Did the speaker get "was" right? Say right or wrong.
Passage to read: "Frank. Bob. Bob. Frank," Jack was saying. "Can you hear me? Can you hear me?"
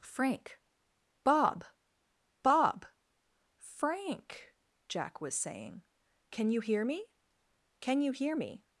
right